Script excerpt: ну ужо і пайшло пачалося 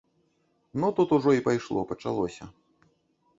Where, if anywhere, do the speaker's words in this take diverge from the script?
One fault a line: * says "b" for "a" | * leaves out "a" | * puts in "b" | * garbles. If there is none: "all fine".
* puts in "тут"